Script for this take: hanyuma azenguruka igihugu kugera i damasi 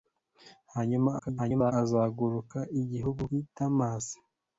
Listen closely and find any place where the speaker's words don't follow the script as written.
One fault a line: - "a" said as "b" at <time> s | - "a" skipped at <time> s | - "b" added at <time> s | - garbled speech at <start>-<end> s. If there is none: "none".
- garbled speech at 1.2-1.7 s
- "kugera" skipped at 3.2 s